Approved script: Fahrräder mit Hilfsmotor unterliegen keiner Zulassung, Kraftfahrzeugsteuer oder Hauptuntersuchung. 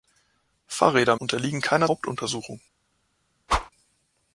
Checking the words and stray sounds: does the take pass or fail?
fail